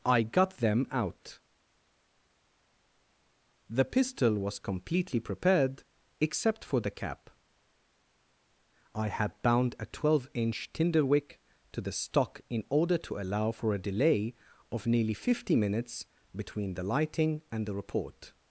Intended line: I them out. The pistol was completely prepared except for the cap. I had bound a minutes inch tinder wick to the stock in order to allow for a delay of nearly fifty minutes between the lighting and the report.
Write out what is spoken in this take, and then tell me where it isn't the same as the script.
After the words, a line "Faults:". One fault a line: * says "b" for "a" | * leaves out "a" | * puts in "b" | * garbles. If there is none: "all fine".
I got them out. The pistol was completely prepared except for the cap. I had bound a twelve inch tinder wick to the stock in order to allow for a delay of nearly fifty minutes between the lighting and the report.
Faults:
* puts in "got"
* says "twelve" for "minutes"